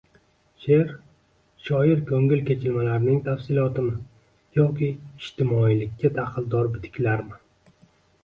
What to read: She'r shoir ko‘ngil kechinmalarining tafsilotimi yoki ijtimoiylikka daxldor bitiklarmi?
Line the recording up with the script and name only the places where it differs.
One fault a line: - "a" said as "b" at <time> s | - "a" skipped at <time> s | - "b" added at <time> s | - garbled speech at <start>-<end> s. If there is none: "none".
none